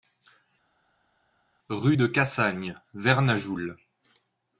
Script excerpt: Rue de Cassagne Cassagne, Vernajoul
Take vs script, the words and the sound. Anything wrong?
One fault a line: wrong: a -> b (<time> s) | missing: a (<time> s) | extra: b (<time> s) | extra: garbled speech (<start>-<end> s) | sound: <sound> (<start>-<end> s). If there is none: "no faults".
missing: Cassagne (2.8 s)